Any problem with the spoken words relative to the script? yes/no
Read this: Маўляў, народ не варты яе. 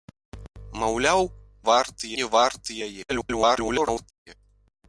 yes